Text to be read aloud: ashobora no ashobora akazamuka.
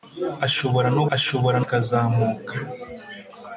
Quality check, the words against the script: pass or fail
pass